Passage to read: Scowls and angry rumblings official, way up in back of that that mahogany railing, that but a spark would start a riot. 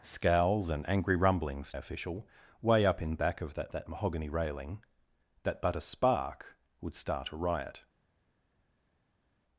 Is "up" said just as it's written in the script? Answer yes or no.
yes